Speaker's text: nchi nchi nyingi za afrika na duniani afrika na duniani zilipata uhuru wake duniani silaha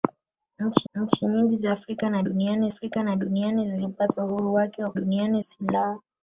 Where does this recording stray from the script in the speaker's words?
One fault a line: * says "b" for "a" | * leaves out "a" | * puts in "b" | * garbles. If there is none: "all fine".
all fine